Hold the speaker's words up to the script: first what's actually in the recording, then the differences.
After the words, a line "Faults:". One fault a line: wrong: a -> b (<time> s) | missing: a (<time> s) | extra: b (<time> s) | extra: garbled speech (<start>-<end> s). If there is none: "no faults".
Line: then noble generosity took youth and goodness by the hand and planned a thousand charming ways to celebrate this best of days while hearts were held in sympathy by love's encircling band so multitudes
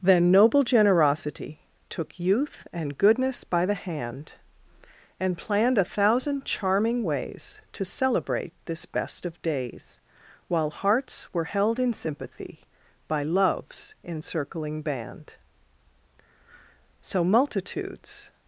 then noble generosity took youth and goodness by the hand and planned a thousand charming ways to celebrate this best of days while hearts were held in sympathy by love's encircling band so multitudes
Faults:
no faults